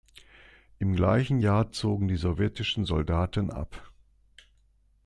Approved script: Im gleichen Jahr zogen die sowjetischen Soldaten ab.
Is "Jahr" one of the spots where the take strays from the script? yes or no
no